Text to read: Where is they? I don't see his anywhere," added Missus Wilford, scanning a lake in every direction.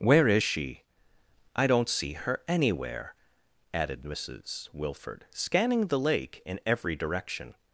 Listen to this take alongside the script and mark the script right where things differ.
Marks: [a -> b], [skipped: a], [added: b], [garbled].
Where is [they? -> she] I don't see [his -> her] anywhere," added Missus Wilford, scanning [a -> the] lake in every direction.